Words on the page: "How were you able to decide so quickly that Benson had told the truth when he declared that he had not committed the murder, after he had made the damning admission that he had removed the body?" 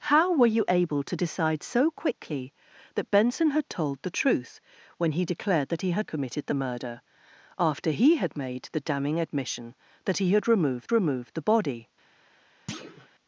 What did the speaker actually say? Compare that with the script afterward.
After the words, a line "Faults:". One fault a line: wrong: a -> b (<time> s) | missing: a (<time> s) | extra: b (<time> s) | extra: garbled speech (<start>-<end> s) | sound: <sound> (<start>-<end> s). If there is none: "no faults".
"How were you able to decide so quickly that Benson had told the truth when he declared that he had committed the murder, after he had made the damning admission that he had removed removed the body?"
Faults:
missing: not (6.1 s)
extra: removed (10.9 s)
sound: thud (12.7-13.1 s)